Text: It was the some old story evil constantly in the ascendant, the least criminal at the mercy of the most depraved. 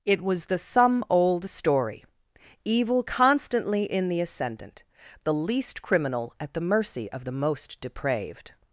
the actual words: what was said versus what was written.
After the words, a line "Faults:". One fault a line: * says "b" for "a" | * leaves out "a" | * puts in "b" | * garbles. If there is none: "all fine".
It was the some old story evil constantly in the ascendant, the least criminal at the mercy of the most depraved.
Faults:
all fine